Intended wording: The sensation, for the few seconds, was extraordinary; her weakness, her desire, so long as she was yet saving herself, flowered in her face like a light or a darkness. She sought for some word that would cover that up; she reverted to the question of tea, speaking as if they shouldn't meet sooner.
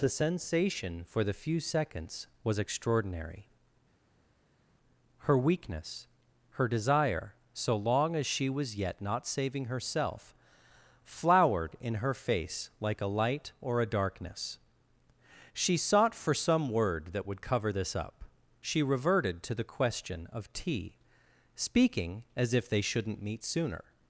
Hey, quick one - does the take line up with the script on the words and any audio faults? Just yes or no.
no